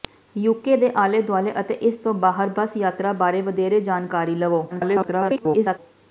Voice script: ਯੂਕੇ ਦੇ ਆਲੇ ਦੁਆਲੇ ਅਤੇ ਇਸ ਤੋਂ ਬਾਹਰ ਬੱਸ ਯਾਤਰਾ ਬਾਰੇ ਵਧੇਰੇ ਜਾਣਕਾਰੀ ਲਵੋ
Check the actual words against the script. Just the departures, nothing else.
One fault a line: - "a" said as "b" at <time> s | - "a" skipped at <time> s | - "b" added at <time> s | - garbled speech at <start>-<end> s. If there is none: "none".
- garbled speech at 4.7-5.8 s